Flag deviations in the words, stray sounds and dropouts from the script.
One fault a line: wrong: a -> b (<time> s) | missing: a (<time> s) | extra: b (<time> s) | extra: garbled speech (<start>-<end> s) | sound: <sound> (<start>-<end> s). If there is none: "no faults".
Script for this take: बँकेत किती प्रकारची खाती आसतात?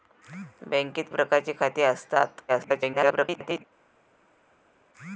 missing: किती (1.1 s)
extra: garbled speech (2.5-3.6 s)